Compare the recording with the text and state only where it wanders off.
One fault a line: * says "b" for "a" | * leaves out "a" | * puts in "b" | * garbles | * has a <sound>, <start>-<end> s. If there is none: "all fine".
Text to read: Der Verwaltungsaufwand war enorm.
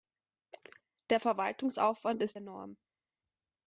* says "ist" for "war"